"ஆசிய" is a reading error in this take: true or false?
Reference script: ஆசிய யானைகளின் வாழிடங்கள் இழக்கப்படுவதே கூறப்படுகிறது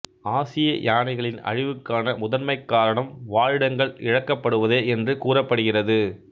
false